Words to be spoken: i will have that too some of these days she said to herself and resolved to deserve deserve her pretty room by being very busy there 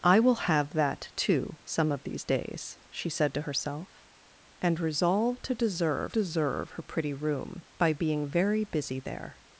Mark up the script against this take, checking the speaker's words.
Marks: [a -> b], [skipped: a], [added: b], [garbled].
i will have that too some of these days she said to herself and resolved to deserve deserve her pretty room by being very busy there